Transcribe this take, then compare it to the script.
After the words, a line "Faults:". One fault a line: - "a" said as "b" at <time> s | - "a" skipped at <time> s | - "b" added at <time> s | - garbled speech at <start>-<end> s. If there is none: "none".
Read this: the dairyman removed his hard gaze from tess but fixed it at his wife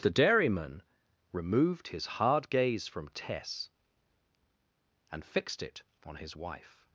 the dairyman removed his hard gaze from tess and fixed it on his wife
Faults:
- "but" said as "and" at 5.1 s
- "at" said as "on" at 6.0 s